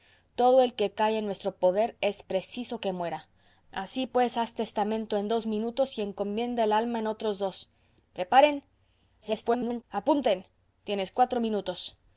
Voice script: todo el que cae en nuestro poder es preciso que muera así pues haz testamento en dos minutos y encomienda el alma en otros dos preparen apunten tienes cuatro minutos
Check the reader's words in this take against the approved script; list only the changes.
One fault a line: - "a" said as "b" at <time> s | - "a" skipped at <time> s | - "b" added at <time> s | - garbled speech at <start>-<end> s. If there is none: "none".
- garbled speech at 9.2-9.8 s